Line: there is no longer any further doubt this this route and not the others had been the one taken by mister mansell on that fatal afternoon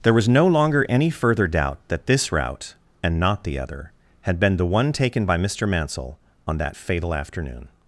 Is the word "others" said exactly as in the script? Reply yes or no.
no